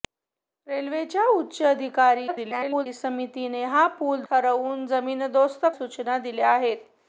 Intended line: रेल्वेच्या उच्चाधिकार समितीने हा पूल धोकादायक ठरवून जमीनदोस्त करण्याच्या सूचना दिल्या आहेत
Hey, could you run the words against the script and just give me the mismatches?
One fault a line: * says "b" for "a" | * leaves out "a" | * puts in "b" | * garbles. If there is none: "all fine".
* garbles
* leaves out "धोकादायक"
* leaves out "करण्याच्या"